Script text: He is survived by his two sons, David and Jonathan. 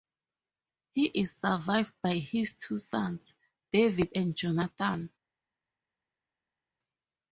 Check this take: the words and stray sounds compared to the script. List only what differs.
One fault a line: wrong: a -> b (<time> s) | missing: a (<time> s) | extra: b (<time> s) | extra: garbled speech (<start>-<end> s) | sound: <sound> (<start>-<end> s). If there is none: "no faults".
no faults